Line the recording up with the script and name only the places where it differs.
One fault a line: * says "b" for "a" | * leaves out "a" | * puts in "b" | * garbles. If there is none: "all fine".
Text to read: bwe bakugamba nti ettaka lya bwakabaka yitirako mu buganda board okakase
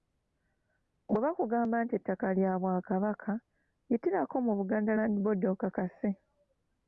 * puts in "land"